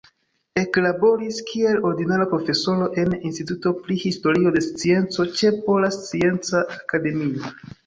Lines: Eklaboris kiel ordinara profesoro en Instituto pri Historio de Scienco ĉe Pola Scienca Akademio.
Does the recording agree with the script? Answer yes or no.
yes